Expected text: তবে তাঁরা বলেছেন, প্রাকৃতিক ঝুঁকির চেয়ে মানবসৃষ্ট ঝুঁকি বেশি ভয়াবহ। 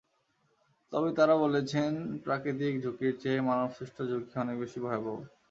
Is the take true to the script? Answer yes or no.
no